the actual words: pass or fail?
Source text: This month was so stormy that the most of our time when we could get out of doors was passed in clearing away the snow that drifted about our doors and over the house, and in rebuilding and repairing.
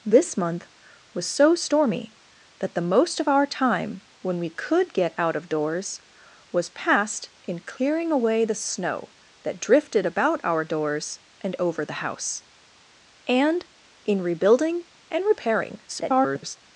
fail